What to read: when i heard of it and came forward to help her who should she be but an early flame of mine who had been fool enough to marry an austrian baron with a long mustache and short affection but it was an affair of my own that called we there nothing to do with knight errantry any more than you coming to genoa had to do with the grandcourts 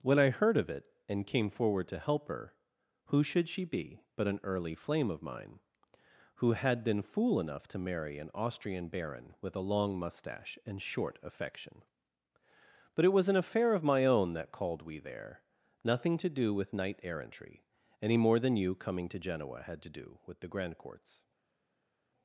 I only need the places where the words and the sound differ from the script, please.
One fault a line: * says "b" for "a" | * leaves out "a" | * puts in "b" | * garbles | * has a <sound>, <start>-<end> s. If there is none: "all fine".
all fine